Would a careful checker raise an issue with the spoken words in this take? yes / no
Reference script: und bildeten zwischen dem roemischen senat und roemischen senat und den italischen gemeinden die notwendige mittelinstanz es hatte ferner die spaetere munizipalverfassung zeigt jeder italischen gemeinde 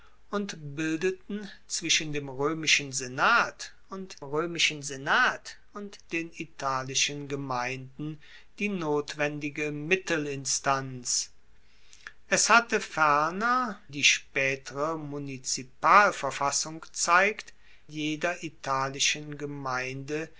no